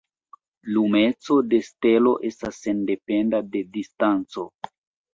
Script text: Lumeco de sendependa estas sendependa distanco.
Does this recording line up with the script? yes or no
no